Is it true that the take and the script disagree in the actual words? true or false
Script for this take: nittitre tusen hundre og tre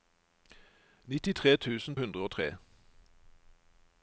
false